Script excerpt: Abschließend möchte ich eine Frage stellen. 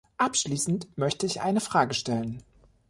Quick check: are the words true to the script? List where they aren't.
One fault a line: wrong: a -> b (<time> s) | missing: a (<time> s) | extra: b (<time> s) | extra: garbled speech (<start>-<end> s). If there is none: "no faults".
no faults